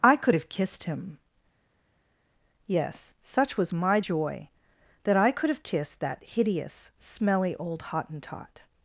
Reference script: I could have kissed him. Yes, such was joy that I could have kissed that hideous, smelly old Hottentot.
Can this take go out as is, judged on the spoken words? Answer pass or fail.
fail